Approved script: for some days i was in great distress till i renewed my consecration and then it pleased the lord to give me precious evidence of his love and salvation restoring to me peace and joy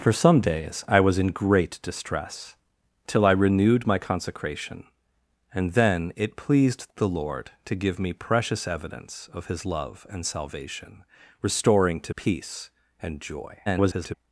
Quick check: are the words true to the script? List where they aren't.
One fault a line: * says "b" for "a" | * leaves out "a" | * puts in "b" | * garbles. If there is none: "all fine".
* leaves out "me"
* garbles